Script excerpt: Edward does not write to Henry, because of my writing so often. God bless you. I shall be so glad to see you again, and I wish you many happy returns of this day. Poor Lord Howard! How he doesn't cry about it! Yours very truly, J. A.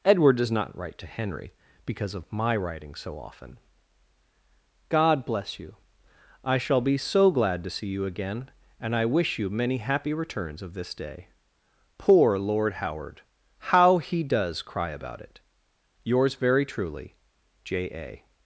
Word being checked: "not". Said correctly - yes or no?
yes